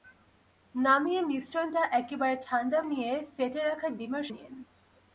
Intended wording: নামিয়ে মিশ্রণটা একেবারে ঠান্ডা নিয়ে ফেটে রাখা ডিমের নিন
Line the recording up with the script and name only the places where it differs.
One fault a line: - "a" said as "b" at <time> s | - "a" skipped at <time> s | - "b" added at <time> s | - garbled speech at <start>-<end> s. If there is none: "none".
none